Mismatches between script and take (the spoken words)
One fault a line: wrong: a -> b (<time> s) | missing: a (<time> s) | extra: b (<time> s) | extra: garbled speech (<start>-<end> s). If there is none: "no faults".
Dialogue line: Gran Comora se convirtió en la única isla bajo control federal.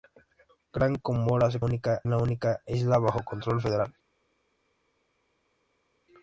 wrong: convirtió -> única (1.6 s)